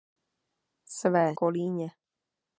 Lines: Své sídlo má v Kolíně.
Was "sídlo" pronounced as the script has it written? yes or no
no